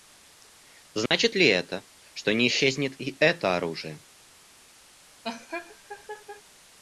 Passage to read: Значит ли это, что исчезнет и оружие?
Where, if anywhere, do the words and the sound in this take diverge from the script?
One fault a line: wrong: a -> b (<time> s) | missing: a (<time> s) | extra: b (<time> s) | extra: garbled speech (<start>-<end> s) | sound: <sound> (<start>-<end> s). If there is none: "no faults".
sound: dropout (1.1-1.1 s)
extra: не (2.3 s)
extra: это (3.2 s)
sound: laugh (5.2-6.4 s)